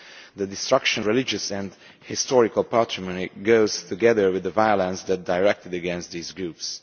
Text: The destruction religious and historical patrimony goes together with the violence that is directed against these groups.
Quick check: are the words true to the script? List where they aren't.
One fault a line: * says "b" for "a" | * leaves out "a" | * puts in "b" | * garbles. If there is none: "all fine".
all fine